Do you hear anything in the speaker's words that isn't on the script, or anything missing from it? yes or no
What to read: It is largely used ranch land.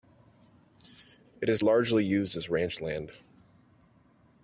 yes